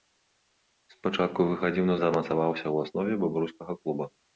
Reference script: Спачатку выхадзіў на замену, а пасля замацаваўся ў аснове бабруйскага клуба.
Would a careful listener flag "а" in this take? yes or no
yes